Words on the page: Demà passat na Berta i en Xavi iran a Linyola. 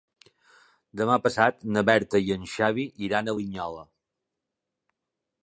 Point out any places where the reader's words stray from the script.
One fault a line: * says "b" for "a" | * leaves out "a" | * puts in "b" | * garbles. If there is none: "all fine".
all fine